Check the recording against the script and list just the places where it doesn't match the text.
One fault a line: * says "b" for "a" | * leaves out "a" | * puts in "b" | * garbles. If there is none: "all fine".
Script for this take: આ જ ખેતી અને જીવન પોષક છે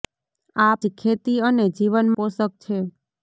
all fine